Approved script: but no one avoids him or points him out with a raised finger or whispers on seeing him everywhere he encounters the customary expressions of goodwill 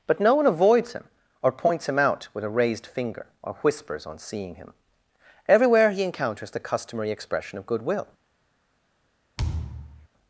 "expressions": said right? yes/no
no